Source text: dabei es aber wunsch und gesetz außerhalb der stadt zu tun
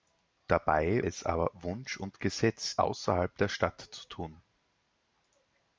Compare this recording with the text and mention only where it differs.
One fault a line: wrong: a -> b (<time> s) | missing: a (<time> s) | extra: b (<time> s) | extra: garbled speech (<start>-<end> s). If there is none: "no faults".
no faults